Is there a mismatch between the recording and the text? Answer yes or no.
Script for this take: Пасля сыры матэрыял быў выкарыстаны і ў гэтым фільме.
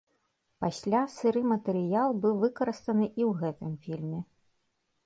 no